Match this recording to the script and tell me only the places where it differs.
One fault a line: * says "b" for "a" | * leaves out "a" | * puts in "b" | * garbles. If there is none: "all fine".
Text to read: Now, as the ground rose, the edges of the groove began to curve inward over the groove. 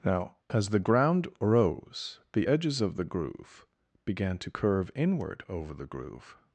all fine